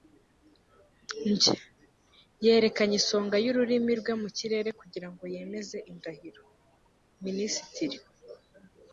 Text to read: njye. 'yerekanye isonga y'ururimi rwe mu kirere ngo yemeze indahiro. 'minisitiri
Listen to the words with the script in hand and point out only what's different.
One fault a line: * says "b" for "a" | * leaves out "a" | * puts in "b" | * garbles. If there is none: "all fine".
* puts in "kugira"